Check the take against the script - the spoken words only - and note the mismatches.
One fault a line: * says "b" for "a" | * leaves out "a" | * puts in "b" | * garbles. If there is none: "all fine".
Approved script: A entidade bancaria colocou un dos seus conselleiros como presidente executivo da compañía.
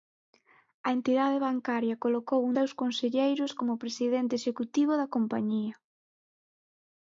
* leaves out "dos"